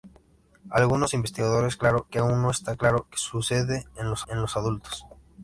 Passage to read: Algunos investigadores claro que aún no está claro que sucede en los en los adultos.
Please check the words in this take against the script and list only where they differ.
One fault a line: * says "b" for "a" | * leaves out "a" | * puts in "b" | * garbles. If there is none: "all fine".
all fine